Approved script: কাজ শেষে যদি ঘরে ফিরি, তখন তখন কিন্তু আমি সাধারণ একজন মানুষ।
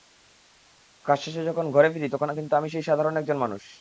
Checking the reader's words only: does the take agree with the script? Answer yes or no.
no